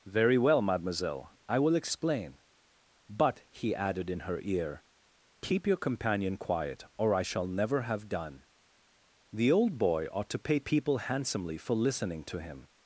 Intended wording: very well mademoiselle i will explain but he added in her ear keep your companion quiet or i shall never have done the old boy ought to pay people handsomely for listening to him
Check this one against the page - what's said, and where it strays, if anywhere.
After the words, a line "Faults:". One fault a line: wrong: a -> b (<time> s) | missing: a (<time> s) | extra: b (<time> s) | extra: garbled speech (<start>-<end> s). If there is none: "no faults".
very well mademoiselle i will explain but he added in her ear keep your companion quiet or i shall never have done the old boy ought to pay people handsomely for listening to him
Faults:
no faults